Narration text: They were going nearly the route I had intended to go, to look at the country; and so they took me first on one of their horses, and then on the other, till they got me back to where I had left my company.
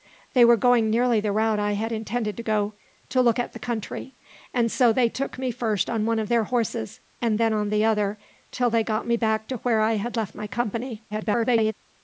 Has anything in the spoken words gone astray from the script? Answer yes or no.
yes